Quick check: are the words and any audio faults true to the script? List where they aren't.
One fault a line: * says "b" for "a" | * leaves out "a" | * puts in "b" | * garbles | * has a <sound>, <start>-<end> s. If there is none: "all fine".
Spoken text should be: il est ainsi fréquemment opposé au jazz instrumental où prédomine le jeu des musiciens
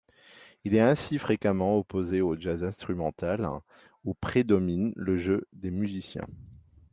all fine